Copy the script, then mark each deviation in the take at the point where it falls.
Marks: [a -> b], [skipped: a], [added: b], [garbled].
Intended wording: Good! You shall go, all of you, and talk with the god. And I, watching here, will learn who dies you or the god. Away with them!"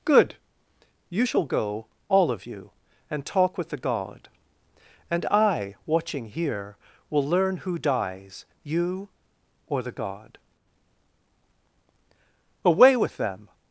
Good! You shall go, all of you, and talk with the god. And I, watching here, will learn who dies you or the god. Away with them!"